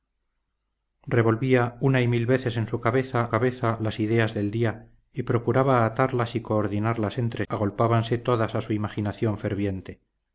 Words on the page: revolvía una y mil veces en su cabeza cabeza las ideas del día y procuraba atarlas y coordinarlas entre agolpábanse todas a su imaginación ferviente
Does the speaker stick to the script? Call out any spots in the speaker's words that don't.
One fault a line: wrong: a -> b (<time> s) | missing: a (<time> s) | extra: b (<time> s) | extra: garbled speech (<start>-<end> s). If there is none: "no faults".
no faults